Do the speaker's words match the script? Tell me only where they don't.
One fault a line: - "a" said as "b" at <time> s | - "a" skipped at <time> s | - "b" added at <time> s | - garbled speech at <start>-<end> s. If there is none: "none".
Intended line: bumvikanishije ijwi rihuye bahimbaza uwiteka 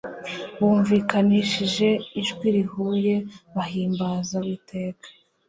none